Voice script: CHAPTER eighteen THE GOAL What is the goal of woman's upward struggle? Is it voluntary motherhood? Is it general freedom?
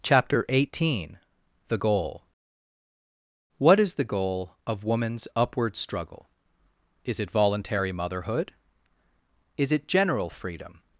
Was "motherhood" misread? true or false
false